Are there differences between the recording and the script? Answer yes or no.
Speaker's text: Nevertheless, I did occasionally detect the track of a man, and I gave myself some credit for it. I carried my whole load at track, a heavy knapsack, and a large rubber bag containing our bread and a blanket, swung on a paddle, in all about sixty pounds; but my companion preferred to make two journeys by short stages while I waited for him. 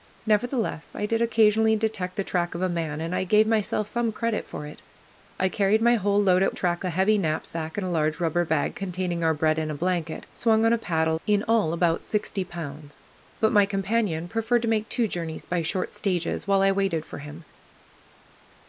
no